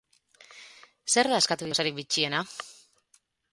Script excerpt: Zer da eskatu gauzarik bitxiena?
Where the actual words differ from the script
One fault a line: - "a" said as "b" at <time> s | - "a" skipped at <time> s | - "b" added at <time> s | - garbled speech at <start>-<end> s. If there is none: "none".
none